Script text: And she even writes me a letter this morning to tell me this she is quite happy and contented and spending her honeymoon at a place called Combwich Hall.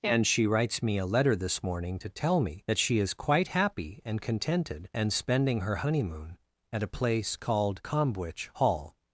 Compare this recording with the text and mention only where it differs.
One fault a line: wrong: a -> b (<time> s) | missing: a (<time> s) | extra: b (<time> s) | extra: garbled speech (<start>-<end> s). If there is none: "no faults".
missing: even (0.5 s)
wrong: this -> that (2.7 s)